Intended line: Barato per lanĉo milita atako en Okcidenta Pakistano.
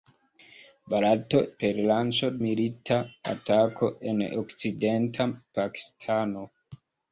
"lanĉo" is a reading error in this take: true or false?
false